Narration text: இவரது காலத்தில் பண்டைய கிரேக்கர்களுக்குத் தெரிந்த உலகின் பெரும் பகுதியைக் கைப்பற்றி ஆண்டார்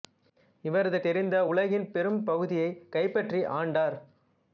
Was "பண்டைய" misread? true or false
true